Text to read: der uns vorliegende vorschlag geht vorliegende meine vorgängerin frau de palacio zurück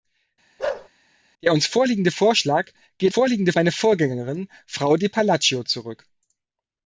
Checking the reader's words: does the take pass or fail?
pass